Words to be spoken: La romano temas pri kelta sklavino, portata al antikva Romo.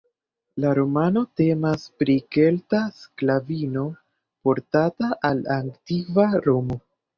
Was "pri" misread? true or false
false